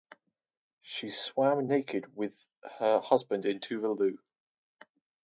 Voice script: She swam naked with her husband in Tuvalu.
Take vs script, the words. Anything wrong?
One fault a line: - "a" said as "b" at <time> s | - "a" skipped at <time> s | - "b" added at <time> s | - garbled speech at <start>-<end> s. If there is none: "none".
none